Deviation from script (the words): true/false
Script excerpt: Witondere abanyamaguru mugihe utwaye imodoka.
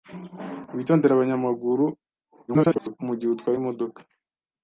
true